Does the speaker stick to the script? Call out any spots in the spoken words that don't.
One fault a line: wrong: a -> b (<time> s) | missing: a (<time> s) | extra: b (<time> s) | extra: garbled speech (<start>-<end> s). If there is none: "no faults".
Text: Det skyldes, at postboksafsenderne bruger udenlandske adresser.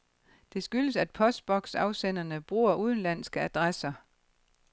no faults